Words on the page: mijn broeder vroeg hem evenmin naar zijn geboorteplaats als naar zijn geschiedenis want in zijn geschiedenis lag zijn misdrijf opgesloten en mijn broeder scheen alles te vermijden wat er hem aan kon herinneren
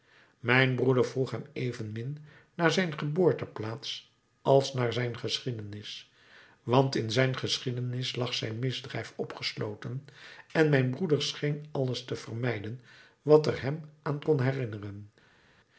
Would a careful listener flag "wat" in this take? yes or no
no